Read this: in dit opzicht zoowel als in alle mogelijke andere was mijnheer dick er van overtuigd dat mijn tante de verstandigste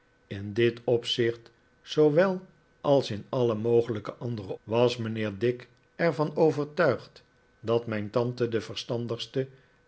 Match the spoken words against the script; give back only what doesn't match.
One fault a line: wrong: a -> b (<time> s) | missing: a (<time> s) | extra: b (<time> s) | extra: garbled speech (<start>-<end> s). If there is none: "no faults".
no faults